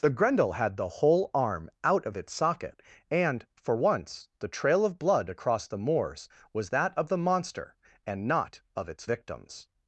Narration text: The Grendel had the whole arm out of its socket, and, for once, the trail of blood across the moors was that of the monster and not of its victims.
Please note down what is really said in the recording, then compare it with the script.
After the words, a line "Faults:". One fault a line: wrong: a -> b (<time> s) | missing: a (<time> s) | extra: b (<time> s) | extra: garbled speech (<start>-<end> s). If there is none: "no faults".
The Grendel had the whole arm out of its socket, and, for once, the trail of blood across the moors was that of the monster and not of its victims.
Faults:
no faults